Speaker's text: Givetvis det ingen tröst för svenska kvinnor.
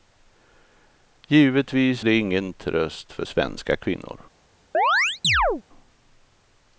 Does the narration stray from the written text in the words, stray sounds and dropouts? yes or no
yes